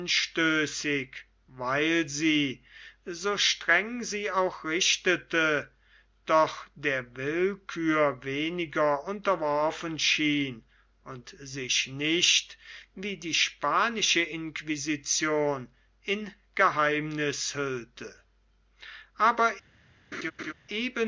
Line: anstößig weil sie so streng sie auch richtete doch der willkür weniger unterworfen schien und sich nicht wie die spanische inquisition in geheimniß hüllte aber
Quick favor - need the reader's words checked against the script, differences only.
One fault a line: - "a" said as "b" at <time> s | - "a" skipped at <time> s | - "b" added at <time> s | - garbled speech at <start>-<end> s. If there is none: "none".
none